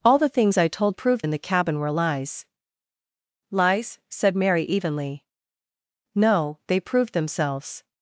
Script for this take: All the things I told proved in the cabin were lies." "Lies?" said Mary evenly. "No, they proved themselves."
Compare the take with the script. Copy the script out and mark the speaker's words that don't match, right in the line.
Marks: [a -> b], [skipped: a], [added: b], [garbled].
All the things I told proved in the cabin were lies." "Lies?" said Mary evenly. "No, they proved themselves."